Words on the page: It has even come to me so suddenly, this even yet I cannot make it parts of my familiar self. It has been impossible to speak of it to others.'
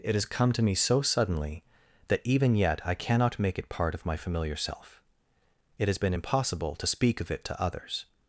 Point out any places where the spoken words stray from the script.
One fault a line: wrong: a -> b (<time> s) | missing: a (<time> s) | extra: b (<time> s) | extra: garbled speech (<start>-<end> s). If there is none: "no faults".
missing: even (0.2 s)
wrong: this -> that (2.1 s)
wrong: parts -> part (3.7 s)